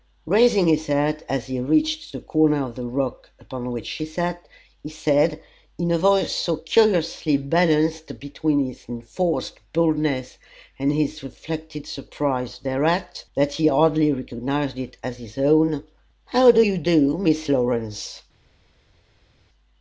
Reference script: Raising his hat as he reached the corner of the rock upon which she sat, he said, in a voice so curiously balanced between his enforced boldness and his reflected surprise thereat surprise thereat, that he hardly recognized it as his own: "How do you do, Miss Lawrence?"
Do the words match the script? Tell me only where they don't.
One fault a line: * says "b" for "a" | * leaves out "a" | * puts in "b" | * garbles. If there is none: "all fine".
* leaves out "surprise thereat"